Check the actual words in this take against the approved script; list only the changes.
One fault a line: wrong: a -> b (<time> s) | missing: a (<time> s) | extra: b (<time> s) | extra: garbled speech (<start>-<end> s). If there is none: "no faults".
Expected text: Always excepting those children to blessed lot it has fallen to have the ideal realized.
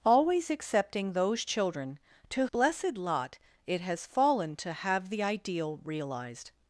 no faults